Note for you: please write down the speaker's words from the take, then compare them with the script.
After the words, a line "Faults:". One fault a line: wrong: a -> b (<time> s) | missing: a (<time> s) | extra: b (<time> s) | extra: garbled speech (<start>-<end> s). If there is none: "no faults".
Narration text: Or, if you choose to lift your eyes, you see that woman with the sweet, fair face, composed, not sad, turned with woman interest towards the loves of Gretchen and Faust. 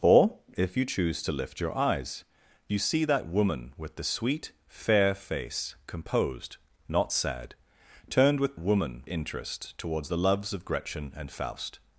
Or, if you choose to lift your eyes, you see that woman with the sweet, fair face, composed, not sad, turned with woman interest towards the loves of Gretchen and Faust.
Faults:
no faults